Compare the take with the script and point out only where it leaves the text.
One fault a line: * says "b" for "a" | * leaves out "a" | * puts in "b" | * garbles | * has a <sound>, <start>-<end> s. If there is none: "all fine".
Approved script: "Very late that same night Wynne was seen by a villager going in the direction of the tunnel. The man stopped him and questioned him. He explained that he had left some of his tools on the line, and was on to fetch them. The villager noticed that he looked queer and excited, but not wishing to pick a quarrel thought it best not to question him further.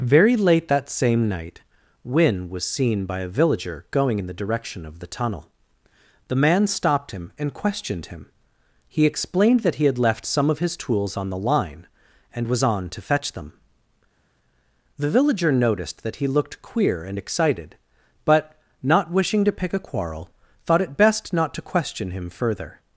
all fine